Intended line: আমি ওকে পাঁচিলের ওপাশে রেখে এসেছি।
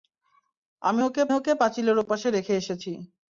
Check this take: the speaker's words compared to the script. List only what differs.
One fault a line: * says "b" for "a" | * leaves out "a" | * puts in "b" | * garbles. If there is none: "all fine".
* puts in "ওকে"